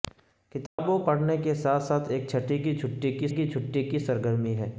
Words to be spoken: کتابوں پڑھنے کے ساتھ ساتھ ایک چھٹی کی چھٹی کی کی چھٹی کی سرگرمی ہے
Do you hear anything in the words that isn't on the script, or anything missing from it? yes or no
no